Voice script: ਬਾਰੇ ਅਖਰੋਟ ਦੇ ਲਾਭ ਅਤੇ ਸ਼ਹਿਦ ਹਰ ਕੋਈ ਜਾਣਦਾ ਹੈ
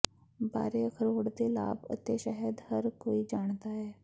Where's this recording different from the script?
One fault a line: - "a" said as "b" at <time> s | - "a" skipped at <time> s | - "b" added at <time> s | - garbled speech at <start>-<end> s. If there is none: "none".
none